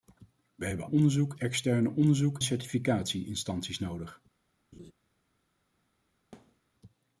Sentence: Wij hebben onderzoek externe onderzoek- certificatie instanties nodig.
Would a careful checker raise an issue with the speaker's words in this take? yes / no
no